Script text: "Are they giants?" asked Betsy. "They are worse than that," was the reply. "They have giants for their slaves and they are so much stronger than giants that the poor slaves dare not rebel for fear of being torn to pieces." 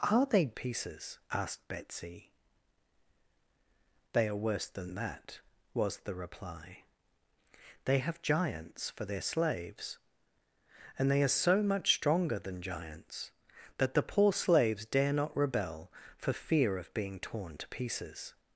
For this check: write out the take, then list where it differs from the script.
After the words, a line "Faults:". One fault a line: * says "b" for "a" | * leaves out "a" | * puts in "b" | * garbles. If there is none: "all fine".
"Are they pieces?" asked Betsy. "They are worse than that," was the reply. "They have giants for their slaves and they are so much stronger than giants that the poor slaves dare not rebel for fear of being torn to pieces."
Faults:
* says "pieces" for "giants"